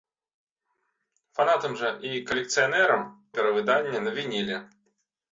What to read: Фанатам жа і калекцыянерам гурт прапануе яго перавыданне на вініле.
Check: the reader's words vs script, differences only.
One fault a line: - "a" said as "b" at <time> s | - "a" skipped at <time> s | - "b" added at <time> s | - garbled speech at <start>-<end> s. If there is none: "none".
- "гурт прапануе яго" skipped at 3.0 s